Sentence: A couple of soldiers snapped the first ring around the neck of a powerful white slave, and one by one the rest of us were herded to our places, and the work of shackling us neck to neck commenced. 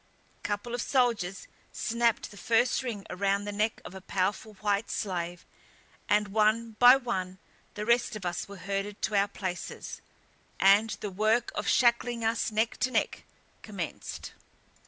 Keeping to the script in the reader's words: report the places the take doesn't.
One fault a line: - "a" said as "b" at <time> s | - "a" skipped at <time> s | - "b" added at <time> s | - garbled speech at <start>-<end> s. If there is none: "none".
none